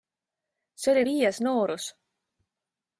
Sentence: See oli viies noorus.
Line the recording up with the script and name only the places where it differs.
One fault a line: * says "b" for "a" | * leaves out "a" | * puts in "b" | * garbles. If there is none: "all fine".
all fine